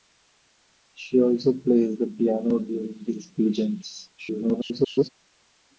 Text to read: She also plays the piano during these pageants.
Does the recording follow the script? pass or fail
fail